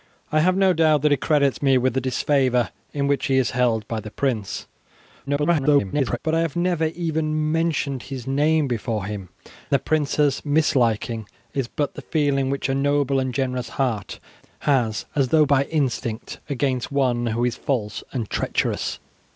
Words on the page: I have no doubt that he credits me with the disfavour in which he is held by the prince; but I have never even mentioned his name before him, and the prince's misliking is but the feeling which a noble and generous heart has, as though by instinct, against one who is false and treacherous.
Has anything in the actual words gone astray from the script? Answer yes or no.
yes